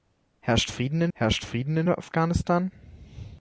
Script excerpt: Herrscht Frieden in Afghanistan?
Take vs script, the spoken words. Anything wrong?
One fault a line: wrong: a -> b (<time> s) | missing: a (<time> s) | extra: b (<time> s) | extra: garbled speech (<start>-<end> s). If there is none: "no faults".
extra: herrscht Frieden in (1.1 s)